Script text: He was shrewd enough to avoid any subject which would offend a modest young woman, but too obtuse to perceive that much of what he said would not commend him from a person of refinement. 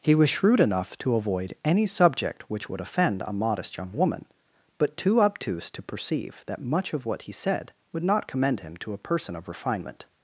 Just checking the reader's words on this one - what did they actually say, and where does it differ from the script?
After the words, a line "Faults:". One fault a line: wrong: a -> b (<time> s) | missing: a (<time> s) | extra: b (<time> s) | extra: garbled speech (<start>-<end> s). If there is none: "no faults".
He was shrewd enough to avoid any subject which would offend a modest young woman, but too obtuse to perceive that much of what he said would not commend him to a person of refinement.
Faults:
wrong: from -> to (8.8 s)